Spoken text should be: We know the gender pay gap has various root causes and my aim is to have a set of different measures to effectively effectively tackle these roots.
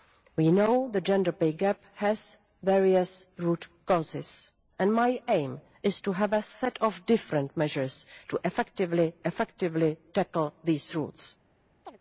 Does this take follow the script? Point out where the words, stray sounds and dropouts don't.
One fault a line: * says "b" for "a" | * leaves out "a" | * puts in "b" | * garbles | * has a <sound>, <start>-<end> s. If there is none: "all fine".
* has a chirp, 11.8-12.0 s